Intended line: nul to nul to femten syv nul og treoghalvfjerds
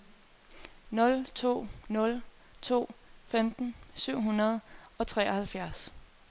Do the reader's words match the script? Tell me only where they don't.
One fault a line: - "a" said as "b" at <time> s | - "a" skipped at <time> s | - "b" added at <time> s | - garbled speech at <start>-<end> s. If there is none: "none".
- "nul" said as "hundrede" at 4.2 s